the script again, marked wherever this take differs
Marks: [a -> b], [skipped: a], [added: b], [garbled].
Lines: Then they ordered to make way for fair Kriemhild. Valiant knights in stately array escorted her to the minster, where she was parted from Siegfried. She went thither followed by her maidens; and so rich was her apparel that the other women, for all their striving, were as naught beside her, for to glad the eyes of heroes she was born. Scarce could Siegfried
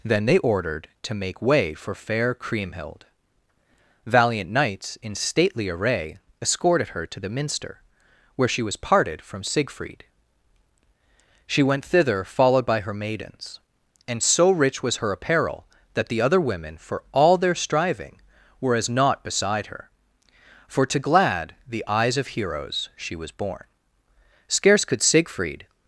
Then they ordered to make way for fair Kriemhild. Valiant knights in stately array escorted her to the minster, where she was parted from Siegfried. She went thither followed by her maidens; and so rich was her apparel that the other women, for all their striving, were as naught beside her, for to glad the eyes of heroes she was born. Scarce could Siegfried